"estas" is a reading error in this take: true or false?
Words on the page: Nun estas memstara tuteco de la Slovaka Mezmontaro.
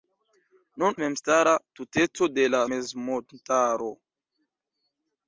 true